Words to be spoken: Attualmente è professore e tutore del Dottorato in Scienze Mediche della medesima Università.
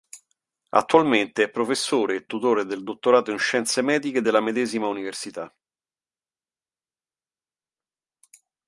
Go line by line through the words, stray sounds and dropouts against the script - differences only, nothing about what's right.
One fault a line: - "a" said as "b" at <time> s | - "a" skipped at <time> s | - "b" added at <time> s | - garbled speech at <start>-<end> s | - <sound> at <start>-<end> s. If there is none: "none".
none